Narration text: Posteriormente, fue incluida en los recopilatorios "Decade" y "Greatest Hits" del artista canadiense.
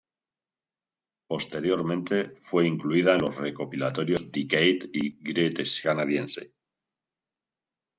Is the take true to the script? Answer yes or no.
no